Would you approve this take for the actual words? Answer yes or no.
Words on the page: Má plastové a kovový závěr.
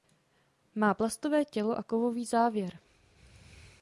no